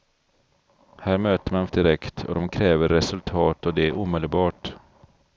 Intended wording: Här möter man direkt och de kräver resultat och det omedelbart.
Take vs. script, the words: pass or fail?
pass